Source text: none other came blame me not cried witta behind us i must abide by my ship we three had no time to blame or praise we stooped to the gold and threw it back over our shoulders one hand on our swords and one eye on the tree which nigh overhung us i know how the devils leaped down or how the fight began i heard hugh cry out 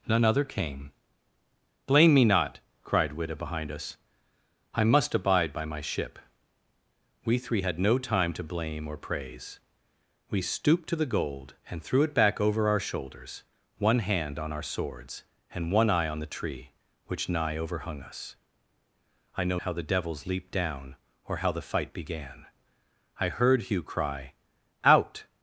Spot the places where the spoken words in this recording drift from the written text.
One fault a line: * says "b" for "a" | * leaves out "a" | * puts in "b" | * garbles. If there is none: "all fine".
all fine